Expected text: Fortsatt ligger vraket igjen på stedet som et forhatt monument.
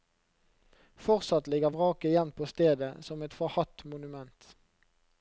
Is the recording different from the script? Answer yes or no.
no